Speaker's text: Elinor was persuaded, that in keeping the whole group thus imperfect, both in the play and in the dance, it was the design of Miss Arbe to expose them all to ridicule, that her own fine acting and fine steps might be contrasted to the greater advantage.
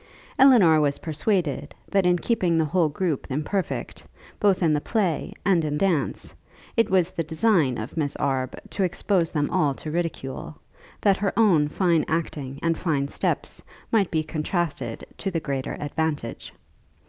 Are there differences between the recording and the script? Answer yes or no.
yes